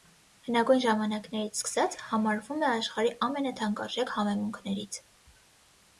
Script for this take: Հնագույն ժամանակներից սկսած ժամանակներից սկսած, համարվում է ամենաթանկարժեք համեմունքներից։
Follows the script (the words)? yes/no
no